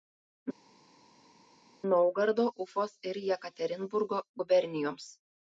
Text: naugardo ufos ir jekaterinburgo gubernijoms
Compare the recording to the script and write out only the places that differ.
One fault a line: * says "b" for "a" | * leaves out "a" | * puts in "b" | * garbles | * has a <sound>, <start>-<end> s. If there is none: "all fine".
all fine